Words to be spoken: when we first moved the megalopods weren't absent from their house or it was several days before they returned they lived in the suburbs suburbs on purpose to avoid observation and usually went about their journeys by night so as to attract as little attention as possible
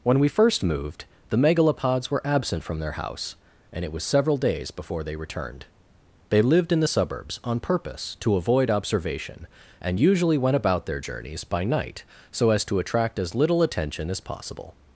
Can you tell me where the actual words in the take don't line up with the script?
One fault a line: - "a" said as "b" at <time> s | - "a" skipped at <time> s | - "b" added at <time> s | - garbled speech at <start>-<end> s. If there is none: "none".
- "weren't" said as "were" at 2.1 s
- "or" said as "and" at 3.7 s
- "suburbs" skipped at 7.4 s